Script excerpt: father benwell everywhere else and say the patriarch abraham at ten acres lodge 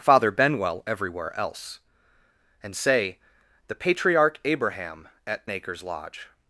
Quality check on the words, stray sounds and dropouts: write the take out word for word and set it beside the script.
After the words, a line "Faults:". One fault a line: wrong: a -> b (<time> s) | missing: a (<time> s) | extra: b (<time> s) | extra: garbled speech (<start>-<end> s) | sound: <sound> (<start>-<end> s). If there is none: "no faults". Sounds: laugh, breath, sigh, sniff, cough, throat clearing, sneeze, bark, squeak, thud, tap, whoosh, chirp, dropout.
father benwell everywhere else and say the patriarch abraham at acres lodge
Faults:
missing: ten (5.5 s)